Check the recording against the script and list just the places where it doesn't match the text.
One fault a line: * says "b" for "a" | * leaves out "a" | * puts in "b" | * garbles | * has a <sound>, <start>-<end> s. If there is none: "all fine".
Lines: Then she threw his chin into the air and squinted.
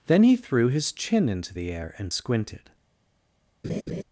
* says "he" for "she"
* has a laugh, 3.6-4.0 s